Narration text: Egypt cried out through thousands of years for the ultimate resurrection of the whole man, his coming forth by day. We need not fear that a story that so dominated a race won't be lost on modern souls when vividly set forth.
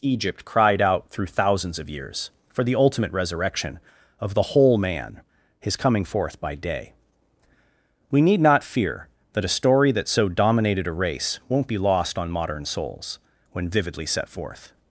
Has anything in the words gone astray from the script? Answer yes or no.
no